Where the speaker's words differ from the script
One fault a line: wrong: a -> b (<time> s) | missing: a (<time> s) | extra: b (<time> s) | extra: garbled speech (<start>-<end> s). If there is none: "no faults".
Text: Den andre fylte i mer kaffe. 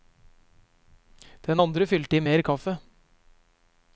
no faults